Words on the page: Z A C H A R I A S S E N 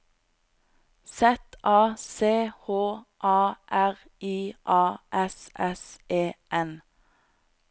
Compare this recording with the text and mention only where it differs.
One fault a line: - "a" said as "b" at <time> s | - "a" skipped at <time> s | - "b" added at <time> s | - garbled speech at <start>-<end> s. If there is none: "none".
none